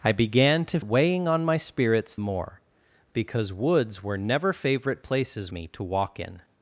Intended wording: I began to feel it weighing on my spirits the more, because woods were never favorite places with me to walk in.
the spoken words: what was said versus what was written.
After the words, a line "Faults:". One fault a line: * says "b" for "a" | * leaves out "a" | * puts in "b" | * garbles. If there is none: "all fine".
I began to weighing on my spirits more, because woods were never favorite places me to walk in.
Faults:
* leaves out "feel it"
* leaves out "the"
* leaves out "with"